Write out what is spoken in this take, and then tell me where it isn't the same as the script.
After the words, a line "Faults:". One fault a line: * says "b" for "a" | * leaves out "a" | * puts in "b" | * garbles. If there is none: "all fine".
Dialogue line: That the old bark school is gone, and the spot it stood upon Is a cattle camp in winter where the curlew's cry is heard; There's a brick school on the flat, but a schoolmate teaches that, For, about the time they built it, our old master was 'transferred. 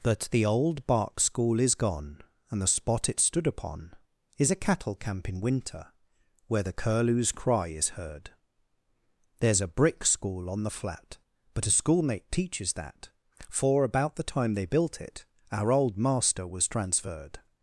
That the old bark school is gone, and the spot it stood upon Is a cattle camp in winter where the curlew's cry is heard; There's a brick school on the flat, but a schoolmate teaches that, For, about the time they built it, our old master was 'transferred.
Faults:
all fine